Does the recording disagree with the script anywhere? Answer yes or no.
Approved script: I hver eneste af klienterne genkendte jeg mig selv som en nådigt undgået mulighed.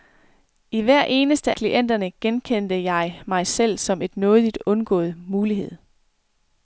yes